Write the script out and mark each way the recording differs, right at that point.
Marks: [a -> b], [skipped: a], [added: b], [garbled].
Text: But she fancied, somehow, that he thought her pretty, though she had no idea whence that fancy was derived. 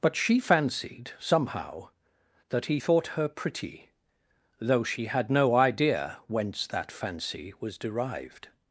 But she fancied, somehow, that he thought her pretty, though she had no idea whence that fancy was derived.